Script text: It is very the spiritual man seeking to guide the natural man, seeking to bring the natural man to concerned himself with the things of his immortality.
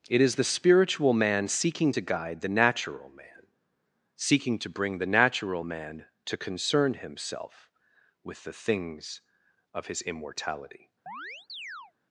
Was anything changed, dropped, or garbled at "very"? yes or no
yes